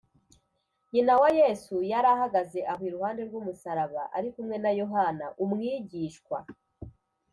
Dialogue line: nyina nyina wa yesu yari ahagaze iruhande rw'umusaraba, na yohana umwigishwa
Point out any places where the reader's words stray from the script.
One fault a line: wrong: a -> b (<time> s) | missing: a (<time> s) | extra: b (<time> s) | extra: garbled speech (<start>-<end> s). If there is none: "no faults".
missing: nyina (1.1 s)
extra: aho (2.7 s)
extra: ari kumwe (4.2 s)